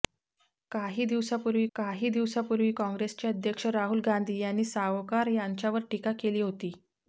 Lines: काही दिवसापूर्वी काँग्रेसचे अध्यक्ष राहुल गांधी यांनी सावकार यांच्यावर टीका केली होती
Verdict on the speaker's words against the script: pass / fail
fail